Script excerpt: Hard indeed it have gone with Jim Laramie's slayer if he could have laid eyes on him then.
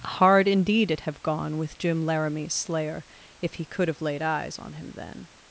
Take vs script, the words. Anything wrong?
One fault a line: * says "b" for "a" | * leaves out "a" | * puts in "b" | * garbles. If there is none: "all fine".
all fine